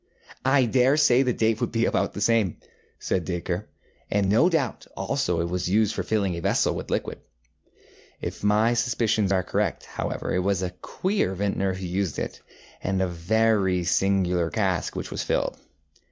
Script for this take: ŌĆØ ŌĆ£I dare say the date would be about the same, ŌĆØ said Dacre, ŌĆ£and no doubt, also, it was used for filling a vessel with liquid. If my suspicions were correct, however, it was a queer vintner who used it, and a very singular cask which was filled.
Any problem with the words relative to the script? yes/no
yes